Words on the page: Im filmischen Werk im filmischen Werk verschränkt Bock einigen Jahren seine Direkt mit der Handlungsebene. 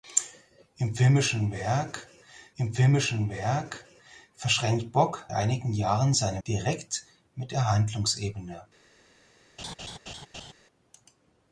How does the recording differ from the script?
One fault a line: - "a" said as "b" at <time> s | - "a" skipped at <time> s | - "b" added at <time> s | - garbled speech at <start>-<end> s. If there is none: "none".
none